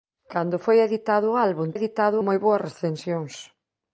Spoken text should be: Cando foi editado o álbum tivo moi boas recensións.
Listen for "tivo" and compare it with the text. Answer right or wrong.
wrong